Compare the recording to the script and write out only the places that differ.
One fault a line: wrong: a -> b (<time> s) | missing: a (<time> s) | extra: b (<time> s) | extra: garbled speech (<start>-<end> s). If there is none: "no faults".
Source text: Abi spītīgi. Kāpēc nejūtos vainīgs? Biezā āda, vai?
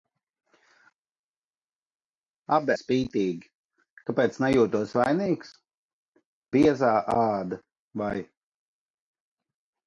no faults